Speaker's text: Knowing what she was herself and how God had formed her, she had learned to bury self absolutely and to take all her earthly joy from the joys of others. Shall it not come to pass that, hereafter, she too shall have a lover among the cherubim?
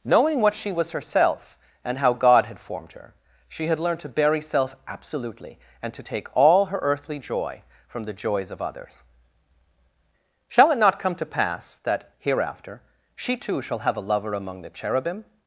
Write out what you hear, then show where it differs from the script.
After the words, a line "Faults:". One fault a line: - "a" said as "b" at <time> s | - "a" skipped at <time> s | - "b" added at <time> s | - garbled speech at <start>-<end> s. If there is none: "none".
Knowing what she was herself and how God had formed her, she had learned to bury self absolutely and to take all her earthly joy from the joys of others. Shall it not come to pass that, hereafter, she too shall have a lover among the cherubim?
Faults:
none